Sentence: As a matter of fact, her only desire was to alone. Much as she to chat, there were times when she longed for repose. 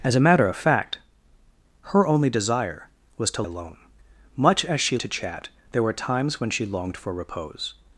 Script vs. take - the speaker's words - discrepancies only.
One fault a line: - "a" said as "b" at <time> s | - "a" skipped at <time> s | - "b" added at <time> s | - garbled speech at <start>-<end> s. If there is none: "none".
none